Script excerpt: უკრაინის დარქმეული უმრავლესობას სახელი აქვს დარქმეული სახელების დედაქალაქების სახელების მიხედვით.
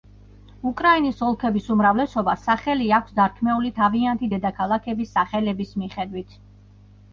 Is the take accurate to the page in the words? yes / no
no